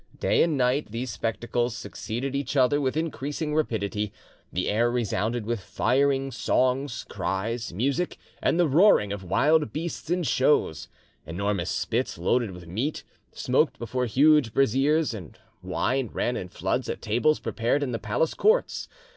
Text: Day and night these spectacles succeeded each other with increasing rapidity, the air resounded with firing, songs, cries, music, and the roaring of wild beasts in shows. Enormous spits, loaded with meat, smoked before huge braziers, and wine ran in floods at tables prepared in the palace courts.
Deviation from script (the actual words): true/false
false